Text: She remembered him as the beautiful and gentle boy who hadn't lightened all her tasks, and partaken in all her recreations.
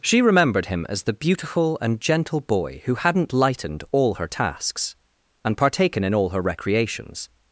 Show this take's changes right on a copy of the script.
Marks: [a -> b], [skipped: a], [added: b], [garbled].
She remembered him as the beautiful and gentle boy who hadn't lightened all her tasks, and partaken in all her recreations.